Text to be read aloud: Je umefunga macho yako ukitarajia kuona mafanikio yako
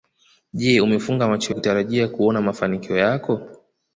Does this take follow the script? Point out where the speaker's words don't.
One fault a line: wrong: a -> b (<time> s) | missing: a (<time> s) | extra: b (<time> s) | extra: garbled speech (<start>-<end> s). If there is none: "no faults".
missing: yako (1.6 s)